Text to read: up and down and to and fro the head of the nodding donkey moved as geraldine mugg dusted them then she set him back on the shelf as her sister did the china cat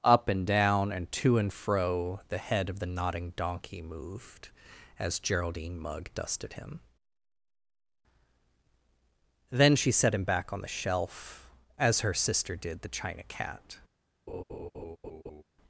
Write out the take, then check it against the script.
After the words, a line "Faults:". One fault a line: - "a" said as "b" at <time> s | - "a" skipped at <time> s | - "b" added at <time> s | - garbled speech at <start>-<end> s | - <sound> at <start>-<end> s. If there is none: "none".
up and down and to and fro the head of the nodding donkey moved as geraldine mugg dusted him then she set him back on the shelf as her sister did the china cat
Faults:
- "them" said as "him" at 6.5 s
- laugh at 14.3-15.4 s